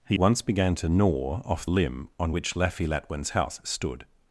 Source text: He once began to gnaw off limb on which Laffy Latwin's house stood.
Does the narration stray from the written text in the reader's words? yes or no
no